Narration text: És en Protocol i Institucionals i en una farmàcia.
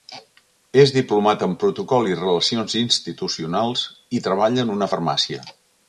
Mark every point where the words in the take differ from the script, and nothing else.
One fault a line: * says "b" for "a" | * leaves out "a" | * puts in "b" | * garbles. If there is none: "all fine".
* puts in "diplomat"
* puts in "Relacions"
* puts in "treballa"